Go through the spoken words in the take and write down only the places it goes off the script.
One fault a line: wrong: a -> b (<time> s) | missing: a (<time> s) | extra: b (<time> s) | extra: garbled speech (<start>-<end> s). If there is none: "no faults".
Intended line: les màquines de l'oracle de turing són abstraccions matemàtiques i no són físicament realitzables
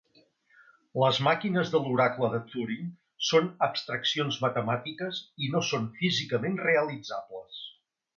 no faults